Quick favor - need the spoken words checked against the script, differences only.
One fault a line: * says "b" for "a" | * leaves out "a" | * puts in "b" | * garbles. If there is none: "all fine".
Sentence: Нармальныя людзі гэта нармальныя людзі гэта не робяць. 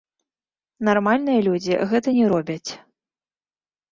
* leaves out "нармальныя людзі гэта"